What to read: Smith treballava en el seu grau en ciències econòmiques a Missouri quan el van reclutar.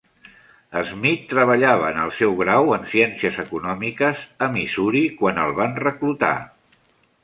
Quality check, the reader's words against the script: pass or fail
pass